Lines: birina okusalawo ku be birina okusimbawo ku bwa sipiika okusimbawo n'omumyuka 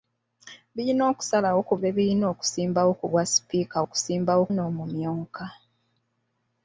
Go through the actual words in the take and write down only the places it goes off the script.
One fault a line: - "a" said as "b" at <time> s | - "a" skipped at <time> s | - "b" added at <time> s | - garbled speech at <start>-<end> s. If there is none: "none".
none